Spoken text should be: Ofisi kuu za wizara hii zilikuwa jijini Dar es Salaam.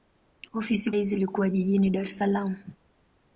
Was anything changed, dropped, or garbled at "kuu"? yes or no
yes